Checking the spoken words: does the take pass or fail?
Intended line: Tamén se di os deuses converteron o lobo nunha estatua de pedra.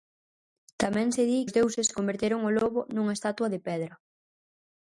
pass